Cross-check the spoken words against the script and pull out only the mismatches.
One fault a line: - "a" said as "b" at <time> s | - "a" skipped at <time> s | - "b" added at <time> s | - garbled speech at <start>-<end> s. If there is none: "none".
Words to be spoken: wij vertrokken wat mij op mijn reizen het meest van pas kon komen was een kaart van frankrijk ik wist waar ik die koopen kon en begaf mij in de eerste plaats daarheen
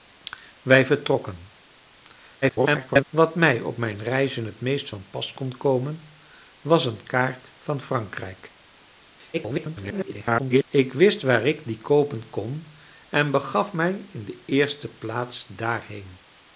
- garbled speech at 2.4-3.1 s
- garbled speech at 9.3-10.6 s